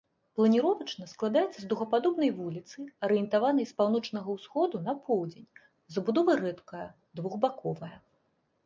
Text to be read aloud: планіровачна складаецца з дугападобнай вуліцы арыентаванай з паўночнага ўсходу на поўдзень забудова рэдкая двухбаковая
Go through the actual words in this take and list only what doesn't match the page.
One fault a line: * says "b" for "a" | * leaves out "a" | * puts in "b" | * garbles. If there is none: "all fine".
all fine